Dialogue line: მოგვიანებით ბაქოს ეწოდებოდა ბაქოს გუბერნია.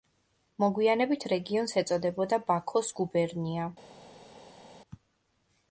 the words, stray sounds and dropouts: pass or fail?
fail